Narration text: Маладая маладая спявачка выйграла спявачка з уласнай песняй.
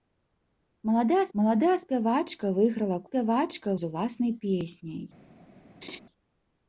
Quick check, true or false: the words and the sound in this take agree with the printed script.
false